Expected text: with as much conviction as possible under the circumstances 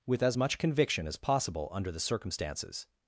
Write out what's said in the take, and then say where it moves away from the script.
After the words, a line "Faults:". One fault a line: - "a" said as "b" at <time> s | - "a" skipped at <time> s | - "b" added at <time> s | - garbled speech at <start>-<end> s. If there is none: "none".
with as much conviction as possible under the circumstances
Faults:
none